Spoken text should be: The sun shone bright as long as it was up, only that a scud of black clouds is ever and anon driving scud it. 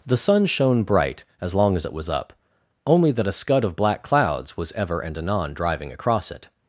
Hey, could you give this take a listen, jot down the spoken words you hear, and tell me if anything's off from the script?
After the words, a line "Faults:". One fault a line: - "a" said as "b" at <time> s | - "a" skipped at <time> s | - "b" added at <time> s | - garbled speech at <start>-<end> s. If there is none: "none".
The sun shone bright as long as it was up, only that a scud of black clouds was ever and anon driving across it.
Faults:
- "is" said as "was" at 4.6 s
- "scud" said as "across" at 5.9 s